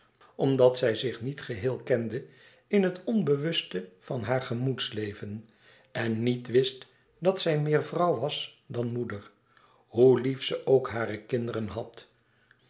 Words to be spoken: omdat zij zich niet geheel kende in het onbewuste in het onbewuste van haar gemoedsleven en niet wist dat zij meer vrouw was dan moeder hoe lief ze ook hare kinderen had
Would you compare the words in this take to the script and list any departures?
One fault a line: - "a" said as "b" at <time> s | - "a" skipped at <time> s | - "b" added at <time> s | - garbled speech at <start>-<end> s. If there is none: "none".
- "in het onbewuste" skipped at 3.9 s